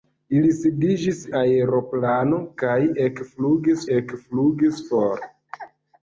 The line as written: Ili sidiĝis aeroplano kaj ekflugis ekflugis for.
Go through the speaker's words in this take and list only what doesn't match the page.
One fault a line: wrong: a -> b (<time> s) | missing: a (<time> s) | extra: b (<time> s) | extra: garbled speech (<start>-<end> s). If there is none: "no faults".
no faults